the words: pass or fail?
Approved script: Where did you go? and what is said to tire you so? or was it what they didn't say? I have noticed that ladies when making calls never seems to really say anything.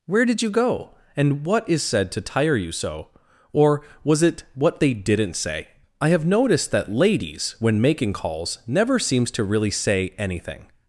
pass